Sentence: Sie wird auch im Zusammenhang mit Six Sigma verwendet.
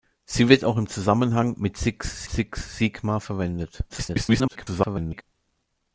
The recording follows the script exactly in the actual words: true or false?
false